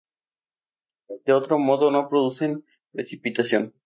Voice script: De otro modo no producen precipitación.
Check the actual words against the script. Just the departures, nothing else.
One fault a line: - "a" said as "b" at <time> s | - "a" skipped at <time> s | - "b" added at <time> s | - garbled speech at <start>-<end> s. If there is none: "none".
none